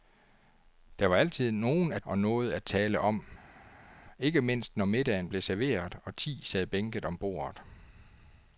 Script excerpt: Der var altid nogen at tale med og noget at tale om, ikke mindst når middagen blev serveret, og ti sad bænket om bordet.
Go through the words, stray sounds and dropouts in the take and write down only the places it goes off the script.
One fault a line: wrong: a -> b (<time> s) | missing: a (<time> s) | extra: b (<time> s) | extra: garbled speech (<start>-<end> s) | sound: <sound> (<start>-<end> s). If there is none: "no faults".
missing: tale med (2.0 s)